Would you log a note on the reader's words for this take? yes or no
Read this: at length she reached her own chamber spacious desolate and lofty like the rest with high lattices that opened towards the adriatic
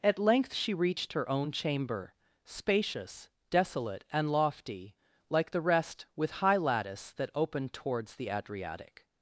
yes